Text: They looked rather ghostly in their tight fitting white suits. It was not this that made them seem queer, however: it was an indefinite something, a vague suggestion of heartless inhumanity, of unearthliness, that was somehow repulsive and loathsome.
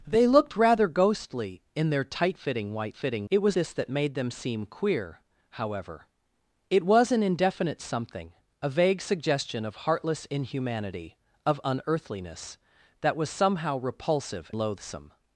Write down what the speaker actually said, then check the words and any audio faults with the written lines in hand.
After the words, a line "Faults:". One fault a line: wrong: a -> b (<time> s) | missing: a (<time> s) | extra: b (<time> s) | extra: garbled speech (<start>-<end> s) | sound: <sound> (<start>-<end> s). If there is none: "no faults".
They looked rather ghostly in their tight fitting white fitting. It was this that made them seem queer, however: it was an indefinite something, a vague suggestion of heartless inhumanity, of unearthliness, that was somehow repulsive loathsome.
Faults:
wrong: suits -> fitting (2.9 s)
missing: not (3.6 s)
missing: and (14.5 s)